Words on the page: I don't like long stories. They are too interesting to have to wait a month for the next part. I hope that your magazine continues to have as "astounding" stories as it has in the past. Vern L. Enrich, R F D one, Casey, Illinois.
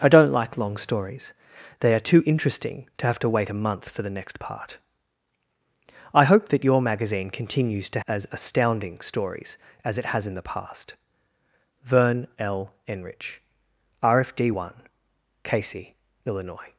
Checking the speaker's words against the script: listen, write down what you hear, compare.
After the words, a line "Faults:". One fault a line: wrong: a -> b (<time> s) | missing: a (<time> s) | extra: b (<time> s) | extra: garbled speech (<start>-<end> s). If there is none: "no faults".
I don't like long stories. They are too interesting to have to wait a month for the next part. I hope that your magazine continues to as "astounding" stories as it has in the past. Vern L. Enrich, R F D one, Casey, Illinois.
Faults:
missing: have (8.0 s)